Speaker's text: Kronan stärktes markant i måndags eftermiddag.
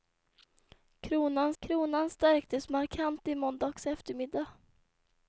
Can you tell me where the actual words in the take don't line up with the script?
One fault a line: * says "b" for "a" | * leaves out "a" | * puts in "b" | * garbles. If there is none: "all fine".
* puts in "kronan"